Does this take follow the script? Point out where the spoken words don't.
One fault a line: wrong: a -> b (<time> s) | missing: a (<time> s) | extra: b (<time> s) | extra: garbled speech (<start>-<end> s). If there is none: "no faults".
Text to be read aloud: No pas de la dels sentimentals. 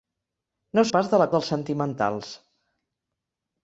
no faults